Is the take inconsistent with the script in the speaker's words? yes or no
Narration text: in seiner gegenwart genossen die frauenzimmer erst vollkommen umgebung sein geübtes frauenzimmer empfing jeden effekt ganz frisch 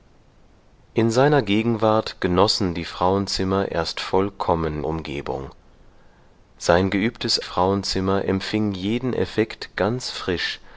no